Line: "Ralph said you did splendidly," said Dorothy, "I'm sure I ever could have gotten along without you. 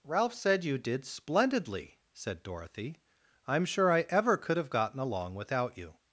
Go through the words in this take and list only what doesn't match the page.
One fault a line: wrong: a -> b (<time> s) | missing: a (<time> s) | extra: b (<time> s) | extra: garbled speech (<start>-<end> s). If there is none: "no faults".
no faults